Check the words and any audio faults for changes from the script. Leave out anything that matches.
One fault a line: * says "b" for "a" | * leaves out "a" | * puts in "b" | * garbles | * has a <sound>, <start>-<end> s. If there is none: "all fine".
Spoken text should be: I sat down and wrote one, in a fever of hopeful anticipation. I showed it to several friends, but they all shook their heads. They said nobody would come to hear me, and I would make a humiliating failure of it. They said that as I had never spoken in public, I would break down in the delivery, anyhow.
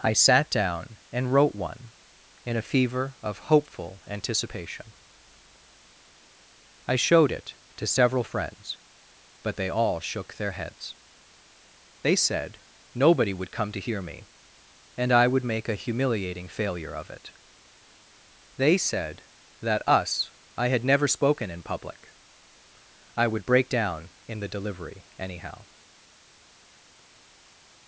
* says "us" for "as"